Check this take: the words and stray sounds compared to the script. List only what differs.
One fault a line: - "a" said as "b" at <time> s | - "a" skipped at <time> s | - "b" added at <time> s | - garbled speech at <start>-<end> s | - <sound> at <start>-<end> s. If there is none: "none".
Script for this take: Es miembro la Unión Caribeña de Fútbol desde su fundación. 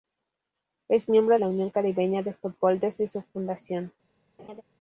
- laugh at 4.4-4.6 s